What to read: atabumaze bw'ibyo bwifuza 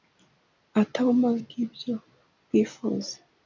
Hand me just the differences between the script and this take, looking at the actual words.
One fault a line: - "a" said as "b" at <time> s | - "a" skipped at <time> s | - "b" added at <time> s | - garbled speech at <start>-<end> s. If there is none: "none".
none